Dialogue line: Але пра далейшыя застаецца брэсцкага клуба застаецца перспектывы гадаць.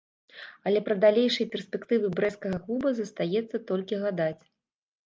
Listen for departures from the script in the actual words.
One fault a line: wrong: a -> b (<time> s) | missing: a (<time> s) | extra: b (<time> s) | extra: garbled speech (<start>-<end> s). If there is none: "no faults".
wrong: застаецца -> перспектывы (1.6 s)
wrong: перспектывы -> толькі (3.7 s)